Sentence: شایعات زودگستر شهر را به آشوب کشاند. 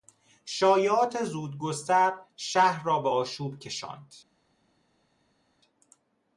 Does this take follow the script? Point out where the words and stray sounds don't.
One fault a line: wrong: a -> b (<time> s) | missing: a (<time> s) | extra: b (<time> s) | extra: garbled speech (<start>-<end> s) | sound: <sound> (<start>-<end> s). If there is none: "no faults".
no faults